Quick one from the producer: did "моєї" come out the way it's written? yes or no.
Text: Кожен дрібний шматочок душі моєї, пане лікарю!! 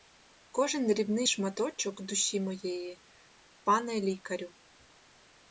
yes